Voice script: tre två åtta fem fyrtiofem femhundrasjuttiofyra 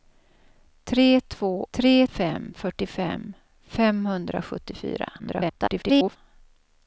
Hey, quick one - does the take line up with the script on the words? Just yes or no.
no